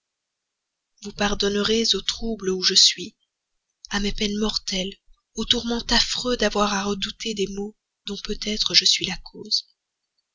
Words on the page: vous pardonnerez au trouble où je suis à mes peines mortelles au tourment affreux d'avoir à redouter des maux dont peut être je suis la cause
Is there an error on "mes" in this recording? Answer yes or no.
no